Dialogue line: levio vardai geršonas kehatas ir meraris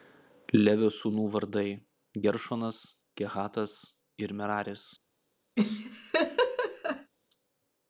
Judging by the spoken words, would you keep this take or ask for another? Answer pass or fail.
fail